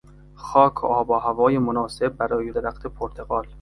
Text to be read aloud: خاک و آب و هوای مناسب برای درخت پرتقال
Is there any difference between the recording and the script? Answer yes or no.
no